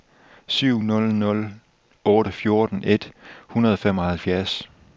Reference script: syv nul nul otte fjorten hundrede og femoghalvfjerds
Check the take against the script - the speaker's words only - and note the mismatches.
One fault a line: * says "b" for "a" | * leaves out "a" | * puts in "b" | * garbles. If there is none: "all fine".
* puts in "et"